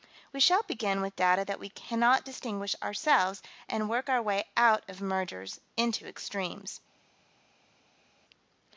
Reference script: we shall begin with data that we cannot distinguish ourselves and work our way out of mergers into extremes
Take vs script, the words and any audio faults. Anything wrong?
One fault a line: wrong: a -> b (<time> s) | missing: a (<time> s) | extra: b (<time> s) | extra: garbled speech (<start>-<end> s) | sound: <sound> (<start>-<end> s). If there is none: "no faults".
no faults